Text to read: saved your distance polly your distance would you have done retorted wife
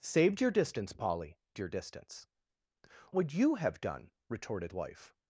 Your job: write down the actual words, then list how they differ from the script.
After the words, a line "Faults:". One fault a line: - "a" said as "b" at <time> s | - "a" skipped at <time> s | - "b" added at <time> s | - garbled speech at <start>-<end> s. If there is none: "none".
saved your distance polly your distance would you have done retorted wife
Faults:
none